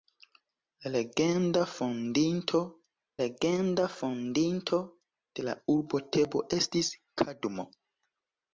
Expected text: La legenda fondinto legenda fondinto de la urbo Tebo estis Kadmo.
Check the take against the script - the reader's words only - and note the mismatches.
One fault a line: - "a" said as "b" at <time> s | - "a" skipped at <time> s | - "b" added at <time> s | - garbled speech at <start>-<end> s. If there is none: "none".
none